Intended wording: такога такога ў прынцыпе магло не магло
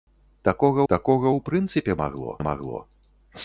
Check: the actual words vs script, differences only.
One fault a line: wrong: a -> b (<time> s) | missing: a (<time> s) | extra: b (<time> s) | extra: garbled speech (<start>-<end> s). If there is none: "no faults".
no faults